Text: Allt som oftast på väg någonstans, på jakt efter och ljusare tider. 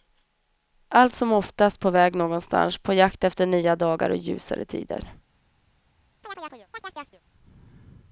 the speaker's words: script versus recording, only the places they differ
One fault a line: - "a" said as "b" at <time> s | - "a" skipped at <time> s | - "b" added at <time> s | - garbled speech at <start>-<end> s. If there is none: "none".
- "nya dagar" added at 3.5 s